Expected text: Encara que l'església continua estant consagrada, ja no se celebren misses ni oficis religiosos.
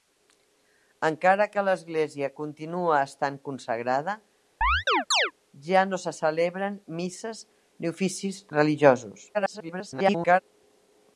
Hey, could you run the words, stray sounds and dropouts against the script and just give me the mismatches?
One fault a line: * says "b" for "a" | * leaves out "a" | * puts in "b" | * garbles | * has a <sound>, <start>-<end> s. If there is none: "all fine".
* has a chirp, 4.6-5.3 s
* garbles